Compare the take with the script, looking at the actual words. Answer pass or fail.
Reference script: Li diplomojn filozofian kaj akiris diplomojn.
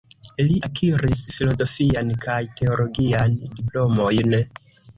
fail